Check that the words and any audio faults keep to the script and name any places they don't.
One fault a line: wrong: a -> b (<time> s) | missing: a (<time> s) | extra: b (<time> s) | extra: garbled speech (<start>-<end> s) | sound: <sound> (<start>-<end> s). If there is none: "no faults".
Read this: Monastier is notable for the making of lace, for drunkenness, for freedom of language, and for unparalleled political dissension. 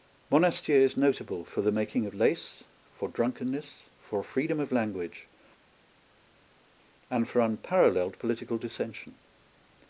no faults